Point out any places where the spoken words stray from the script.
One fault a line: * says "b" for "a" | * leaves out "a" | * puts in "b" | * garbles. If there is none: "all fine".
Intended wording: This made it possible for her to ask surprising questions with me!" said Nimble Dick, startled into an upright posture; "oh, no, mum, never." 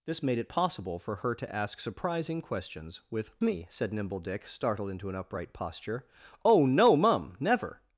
all fine